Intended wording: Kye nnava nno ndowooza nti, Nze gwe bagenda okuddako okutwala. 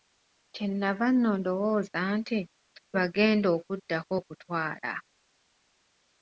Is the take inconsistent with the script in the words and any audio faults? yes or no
yes